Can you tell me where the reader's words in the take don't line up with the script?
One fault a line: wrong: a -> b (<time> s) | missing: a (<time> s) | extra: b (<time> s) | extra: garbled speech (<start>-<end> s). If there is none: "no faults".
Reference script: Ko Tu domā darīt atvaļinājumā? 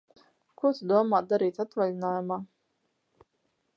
no faults